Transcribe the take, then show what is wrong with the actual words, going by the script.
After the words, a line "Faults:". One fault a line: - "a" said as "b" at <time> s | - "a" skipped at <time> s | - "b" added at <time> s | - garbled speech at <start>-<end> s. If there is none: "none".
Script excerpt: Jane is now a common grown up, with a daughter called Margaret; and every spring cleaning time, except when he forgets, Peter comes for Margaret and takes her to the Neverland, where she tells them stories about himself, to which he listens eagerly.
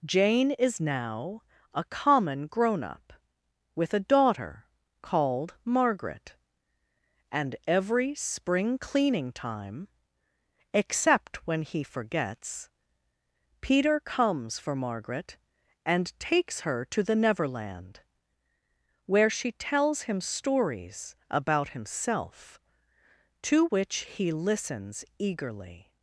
Jane is now a common grown up, with a daughter called Margaret; and every spring cleaning time, except when he forgets, Peter comes for Margaret and takes her to the Neverland, where she tells him stories about himself, to which he listens eagerly.
Faults:
- "them" said as "him" at 20.0 s